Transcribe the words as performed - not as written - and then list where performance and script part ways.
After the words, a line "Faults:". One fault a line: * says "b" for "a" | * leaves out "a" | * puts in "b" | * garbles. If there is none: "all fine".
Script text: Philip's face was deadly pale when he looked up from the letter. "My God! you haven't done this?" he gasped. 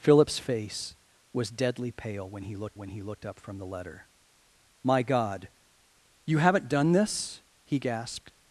Philip's face was deadly pale when he looked when he looked up from the letter. "My God! you haven't done this?" he gasped.
Faults:
* puts in "when he looked"